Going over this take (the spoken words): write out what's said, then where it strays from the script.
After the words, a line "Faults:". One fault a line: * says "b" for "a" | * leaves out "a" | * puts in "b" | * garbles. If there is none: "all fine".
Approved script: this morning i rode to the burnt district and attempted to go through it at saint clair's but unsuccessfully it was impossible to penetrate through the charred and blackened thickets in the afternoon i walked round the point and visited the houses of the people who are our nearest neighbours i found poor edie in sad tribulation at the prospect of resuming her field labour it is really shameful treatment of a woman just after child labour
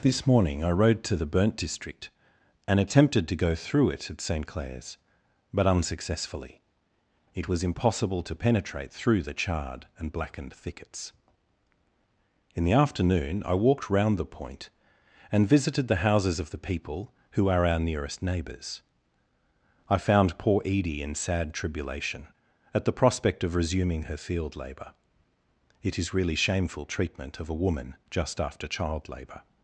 this morning i rode to the burnt district and attempted to go through it at saint clair's but unsuccessfully it was impossible to penetrate through the charred and blackened thickets in the afternoon i walked round the point and visited the houses of the people who are our nearest neighbours i found poor edie in sad tribulation at the prospect of resuming her field labour it is really shameful treatment of a woman just after child labour
Faults:
all fine